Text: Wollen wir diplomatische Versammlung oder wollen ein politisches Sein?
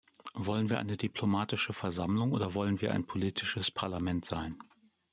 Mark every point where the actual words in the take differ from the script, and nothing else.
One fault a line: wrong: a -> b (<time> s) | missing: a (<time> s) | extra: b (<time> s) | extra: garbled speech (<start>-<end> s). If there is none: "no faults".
extra: eine (0.8 s)
extra: wir (2.8 s)
extra: Parlament (3.7 s)